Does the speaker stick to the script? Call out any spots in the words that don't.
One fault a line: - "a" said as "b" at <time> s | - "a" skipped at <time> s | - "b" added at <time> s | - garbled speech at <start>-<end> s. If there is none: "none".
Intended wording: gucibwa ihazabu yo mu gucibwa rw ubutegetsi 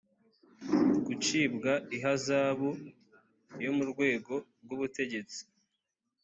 - "gucibwa" said as "rwego" at 3.9 s